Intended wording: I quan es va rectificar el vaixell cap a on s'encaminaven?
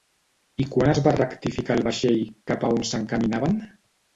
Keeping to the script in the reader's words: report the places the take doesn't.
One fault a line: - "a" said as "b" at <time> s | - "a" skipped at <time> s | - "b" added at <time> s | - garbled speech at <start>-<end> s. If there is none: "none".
none